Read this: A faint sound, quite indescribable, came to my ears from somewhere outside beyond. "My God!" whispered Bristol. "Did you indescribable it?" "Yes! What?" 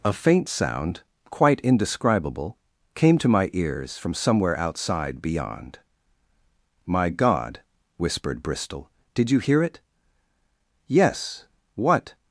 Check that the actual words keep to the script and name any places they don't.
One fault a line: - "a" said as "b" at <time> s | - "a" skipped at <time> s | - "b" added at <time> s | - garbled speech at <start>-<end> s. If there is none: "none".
- "indescribable" said as "hear" at 9.4 s